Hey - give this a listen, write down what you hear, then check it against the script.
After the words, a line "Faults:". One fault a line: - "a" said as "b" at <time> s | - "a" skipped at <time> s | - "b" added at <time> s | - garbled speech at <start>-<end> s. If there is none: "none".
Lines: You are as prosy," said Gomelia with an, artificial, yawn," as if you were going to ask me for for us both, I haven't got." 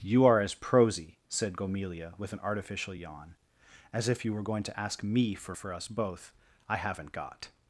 You are as prosy," said Gomelia with an, artificial, yawn," as if you were going to ask me for for us both, I haven't got."
Faults:
none